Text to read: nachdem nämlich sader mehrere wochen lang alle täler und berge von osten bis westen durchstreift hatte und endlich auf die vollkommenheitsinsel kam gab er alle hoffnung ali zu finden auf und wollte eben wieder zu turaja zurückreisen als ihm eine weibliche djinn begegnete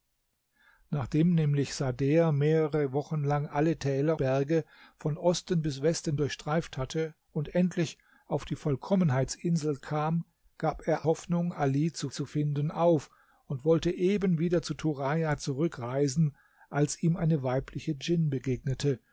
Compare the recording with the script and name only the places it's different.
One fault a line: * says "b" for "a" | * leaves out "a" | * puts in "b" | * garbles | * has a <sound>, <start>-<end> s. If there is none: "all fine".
* leaves out "und"
* leaves out "alle"
* puts in "zu"